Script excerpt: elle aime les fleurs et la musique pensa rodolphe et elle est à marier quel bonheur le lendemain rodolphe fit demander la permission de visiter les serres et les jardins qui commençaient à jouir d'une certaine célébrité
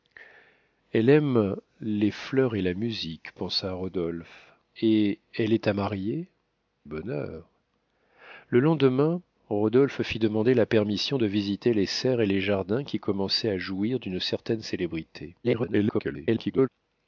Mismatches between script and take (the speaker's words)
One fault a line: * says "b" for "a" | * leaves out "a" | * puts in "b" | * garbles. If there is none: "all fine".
* leaves out "quel"
* garbles